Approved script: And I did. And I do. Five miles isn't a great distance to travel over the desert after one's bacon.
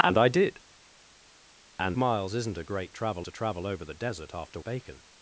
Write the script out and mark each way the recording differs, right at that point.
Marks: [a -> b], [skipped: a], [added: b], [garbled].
And I did. And [skipped: I do. Five] miles isn't a great [distance -> travel] to travel over the desert after [skipped: one's] bacon.